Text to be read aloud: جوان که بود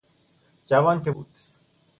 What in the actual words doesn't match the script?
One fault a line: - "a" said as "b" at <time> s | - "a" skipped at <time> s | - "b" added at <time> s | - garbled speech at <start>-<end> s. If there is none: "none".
none